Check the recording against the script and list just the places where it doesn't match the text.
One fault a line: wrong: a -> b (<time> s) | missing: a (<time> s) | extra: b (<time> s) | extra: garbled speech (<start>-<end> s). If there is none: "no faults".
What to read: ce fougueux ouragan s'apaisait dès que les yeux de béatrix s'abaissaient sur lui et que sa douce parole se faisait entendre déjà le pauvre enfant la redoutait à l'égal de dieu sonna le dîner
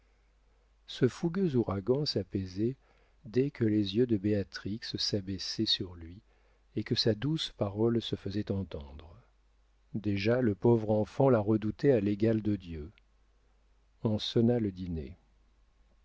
extra: on (14.0 s)